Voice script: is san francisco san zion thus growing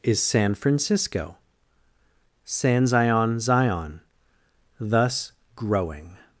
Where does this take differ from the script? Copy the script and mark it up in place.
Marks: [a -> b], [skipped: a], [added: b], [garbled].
is san francisco san zion [added: zion] thus growing